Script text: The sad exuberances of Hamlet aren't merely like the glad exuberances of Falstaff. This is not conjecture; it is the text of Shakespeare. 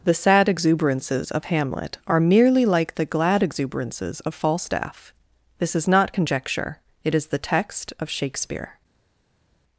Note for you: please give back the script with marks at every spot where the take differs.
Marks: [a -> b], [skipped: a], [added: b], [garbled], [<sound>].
The sad exuberances of Hamlet [aren't -> are] merely like the glad exuberances of Falstaff. This is not conjecture; it is the text of Shakespeare.